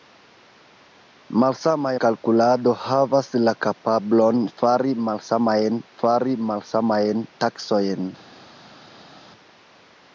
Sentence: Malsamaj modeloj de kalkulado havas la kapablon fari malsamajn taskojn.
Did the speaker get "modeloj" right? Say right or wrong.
wrong